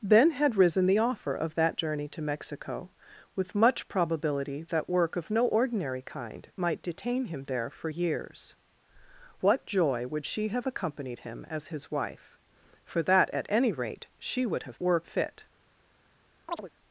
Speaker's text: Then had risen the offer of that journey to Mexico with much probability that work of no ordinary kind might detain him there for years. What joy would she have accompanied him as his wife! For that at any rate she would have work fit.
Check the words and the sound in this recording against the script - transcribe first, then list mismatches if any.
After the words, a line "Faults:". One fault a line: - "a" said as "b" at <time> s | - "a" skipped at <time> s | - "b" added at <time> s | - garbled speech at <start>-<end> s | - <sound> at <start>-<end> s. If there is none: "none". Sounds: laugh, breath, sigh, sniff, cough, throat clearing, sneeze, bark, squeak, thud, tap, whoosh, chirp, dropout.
Then had risen the offer of that journey to Mexico with much probability that work of no ordinary kind might detain him there for years. What joy would she have accompanied him as his wife! For that at any rate she would have work fit.
Faults:
- chirp at 16.5-16.7 s